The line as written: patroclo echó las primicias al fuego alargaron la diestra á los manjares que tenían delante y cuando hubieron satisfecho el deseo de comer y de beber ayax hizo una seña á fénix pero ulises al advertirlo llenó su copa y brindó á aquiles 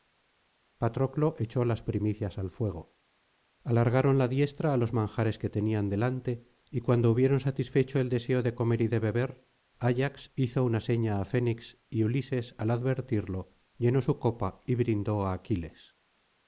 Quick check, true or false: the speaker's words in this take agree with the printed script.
false